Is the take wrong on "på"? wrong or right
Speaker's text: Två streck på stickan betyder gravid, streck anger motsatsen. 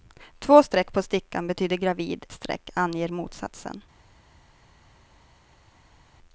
right